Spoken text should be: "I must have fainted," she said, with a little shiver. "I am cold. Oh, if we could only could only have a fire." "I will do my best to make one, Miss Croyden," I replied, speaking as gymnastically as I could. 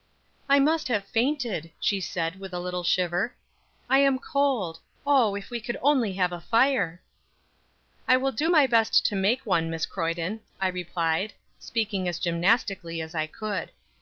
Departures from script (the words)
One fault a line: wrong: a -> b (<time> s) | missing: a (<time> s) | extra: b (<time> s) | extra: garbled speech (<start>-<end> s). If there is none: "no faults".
missing: could only (6.1 s)